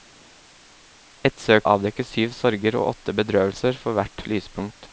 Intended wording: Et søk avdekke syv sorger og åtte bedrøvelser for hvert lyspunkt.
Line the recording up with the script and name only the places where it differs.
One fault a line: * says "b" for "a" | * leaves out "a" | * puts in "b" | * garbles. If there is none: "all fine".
all fine